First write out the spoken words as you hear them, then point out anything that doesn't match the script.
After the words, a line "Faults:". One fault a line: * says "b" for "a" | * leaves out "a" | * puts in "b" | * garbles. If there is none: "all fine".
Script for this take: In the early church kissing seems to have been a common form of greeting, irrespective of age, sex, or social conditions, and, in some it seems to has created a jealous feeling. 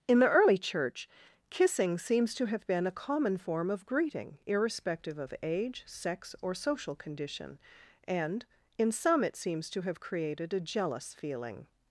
In the early church kissing seems to have been a common form of greeting, irrespective of age, sex, or social condition, and, in some it seems to have created a jealous feeling.
Faults:
* says "condition" for "conditions"
* says "have" for "has"